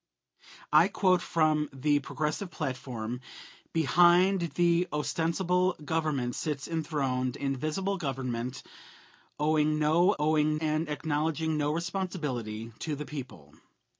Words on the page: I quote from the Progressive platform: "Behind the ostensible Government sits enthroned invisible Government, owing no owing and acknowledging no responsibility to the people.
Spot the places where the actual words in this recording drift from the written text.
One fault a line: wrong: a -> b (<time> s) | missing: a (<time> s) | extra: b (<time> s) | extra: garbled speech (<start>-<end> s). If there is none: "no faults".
no faults